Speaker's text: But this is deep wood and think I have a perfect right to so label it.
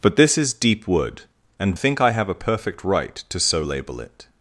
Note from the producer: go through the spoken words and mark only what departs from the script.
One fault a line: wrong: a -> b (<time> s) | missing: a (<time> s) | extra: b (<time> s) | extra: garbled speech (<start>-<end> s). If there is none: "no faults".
no faults